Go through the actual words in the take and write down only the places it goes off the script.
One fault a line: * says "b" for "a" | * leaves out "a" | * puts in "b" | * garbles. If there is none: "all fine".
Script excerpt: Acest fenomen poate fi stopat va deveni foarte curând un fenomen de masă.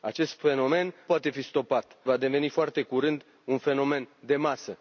all fine